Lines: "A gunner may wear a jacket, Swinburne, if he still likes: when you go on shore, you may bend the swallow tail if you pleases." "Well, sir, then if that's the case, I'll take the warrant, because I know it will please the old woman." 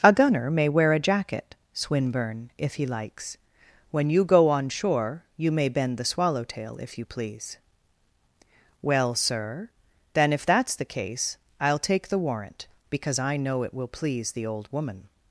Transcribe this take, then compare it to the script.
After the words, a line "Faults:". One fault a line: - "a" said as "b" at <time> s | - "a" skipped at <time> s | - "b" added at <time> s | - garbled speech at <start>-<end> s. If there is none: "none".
"A gunner may wear a jacket, Swinburne, if he likes: when you go on shore, you may bend the swallow tail if you please." "Well, sir, then if that's the case, I'll take the warrant, because I know it will please the old woman."
Faults:
- "still" skipped at 2.9 s
- "pleases" said as "please" at 7.0 s